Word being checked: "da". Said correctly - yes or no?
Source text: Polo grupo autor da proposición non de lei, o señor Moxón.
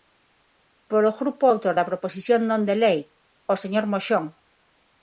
yes